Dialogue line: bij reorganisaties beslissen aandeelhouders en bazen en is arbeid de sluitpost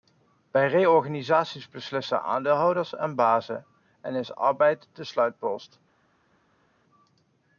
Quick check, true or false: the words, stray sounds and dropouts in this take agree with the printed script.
true